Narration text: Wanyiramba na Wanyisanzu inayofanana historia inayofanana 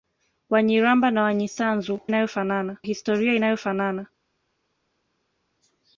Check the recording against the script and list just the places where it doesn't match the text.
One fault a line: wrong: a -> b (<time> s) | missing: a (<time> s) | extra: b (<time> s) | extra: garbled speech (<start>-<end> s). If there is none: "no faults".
no faults